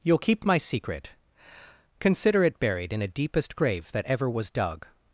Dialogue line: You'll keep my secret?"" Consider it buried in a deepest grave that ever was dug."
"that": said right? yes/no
yes